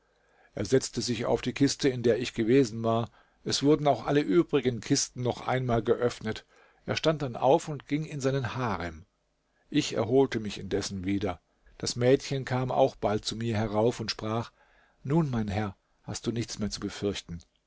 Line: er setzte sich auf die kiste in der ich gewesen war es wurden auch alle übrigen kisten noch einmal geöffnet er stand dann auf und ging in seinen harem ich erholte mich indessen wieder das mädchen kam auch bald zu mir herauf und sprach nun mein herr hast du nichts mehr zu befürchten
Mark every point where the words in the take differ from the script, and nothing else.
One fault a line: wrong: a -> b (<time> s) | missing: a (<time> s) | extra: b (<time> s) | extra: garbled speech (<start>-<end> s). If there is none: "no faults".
no faults